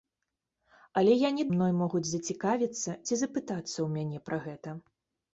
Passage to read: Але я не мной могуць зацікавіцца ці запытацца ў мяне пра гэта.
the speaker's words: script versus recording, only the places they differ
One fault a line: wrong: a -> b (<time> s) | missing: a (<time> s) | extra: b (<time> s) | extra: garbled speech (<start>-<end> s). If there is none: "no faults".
no faults